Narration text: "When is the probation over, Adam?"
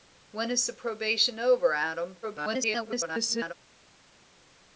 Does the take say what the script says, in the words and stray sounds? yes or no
no